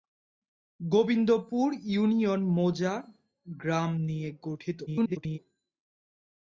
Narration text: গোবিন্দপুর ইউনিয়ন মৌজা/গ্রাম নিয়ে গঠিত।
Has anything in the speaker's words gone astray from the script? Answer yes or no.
yes